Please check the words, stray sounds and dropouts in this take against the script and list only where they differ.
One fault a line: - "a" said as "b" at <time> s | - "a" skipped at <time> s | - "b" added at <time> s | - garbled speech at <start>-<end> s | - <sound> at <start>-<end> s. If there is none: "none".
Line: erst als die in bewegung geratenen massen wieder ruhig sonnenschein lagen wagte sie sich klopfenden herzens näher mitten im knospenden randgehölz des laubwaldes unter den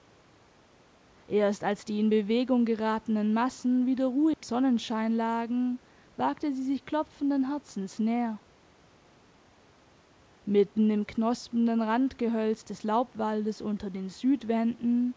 - dropout at 4.3-4.4 s